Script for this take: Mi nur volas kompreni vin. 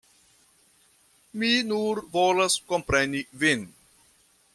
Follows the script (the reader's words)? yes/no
yes